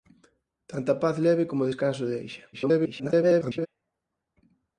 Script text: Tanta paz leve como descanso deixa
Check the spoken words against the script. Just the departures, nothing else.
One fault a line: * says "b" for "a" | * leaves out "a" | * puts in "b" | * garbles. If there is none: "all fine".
* garbles